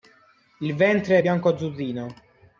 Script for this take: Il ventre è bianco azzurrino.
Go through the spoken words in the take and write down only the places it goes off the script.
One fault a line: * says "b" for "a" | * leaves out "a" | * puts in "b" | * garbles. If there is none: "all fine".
all fine